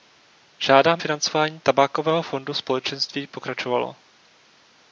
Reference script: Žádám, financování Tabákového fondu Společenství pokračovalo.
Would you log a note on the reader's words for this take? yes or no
no